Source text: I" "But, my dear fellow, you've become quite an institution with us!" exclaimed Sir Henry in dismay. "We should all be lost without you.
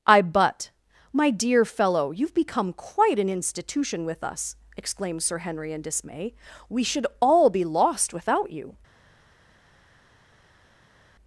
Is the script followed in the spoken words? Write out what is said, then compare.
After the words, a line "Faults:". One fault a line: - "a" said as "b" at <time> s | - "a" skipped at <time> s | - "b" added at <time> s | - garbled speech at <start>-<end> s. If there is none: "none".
I" "But, my dear fellow, you've become quite an institution with us!" exclaimed Sir Henry in dismay. "We should all be lost without you.
Faults:
none